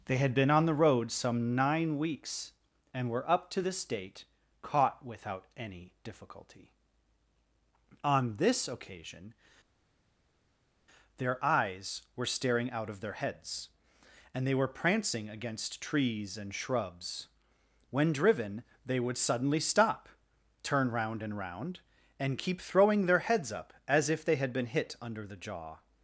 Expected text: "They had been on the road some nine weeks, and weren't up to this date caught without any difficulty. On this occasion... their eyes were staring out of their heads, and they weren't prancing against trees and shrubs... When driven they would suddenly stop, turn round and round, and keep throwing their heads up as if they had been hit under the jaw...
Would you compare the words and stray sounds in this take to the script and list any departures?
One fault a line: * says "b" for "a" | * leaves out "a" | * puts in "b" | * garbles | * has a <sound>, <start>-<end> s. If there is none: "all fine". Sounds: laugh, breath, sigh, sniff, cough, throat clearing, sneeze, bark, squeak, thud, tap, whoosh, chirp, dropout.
* says "were" for "weren't"
* says "were" for "weren't"